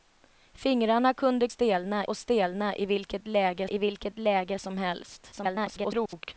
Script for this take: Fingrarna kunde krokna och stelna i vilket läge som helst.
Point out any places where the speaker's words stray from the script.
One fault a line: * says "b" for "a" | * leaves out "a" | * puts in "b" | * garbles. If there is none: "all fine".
* says "stelna" for "krokna"
* puts in "i vilket läge"
* garbles